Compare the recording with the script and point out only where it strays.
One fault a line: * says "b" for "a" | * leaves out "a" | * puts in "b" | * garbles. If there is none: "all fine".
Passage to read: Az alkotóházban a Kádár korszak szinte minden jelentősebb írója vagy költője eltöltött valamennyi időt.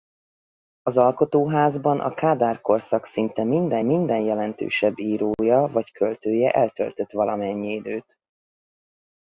* puts in "minden"